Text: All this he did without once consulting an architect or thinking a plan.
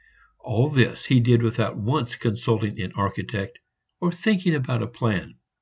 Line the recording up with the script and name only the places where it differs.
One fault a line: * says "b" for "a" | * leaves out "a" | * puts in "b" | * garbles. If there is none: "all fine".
* puts in "about"